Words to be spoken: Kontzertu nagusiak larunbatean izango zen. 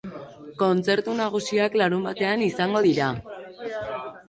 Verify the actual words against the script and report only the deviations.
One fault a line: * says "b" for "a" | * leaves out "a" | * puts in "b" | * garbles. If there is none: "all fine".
* says "dira" for "zen"